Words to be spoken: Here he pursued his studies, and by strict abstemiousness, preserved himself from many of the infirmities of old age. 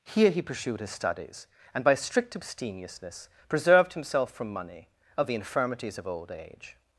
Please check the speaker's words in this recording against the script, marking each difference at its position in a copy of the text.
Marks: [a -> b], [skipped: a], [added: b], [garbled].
Here he pursued his studies, and by strict abstemiousness, preserved himself from [many -> money] of the infirmities of old age.